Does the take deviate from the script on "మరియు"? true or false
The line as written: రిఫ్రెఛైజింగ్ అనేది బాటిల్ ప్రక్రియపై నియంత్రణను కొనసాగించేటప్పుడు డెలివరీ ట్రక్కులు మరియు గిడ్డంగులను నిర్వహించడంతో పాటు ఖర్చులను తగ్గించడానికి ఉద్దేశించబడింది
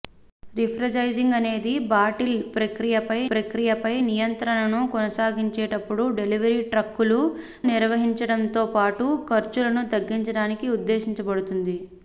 true